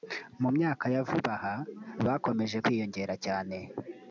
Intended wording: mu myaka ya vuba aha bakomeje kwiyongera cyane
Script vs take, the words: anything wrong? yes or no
no